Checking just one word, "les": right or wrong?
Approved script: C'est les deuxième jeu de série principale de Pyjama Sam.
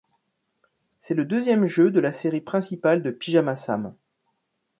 wrong